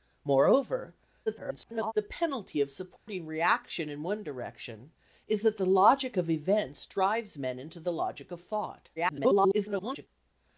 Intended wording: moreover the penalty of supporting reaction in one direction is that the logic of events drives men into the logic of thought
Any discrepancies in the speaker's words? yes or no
yes